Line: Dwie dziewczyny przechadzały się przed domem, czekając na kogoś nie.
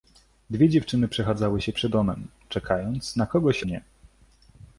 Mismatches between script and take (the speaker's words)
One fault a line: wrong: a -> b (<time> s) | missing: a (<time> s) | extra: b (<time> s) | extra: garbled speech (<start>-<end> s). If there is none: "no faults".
no faults